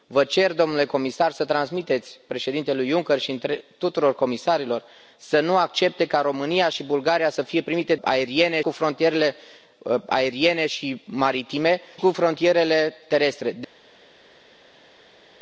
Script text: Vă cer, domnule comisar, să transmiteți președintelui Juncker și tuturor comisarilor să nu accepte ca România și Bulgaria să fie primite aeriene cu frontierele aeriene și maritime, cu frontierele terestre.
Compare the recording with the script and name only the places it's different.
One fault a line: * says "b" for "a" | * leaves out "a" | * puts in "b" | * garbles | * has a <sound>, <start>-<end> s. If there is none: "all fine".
all fine